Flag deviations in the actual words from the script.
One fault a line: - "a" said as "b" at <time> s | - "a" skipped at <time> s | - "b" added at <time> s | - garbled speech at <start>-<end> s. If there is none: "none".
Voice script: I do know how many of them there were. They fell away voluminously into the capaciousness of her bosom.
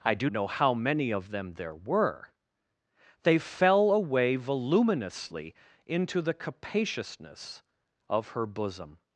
none